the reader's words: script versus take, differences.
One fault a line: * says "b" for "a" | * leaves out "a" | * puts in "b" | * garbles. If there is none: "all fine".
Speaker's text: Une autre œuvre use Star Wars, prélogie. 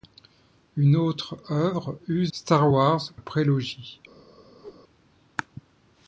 all fine